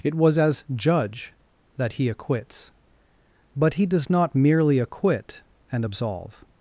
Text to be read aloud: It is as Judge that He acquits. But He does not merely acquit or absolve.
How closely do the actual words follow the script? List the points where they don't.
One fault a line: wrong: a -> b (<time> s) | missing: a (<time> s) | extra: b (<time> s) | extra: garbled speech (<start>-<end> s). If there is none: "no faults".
wrong: is -> was (0.1 s)
wrong: or -> and (5.7 s)